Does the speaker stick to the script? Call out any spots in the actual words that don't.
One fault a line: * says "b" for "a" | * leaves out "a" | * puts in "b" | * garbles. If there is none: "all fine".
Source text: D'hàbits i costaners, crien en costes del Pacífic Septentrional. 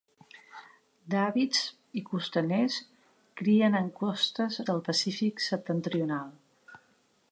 all fine